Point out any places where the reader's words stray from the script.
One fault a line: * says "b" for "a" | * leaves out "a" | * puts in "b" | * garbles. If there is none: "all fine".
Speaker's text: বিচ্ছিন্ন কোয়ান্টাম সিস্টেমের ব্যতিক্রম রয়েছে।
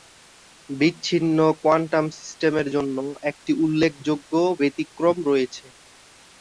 * puts in "জন্য একটি উল্লেখযোগ্য"